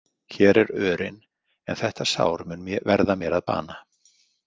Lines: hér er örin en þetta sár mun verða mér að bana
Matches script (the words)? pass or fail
pass